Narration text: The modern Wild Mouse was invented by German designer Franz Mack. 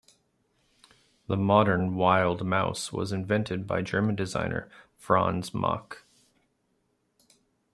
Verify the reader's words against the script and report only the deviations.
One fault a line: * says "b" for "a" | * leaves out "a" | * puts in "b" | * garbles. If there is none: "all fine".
all fine